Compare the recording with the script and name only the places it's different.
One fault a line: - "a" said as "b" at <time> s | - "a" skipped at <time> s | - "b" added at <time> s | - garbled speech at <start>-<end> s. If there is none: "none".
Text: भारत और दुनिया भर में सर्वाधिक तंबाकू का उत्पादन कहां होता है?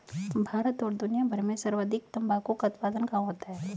none